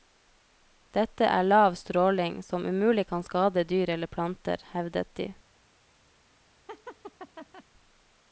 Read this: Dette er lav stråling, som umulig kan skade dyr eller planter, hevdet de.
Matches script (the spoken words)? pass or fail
pass